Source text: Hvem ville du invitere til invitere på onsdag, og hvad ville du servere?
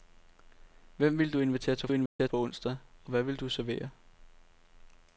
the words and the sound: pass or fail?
fail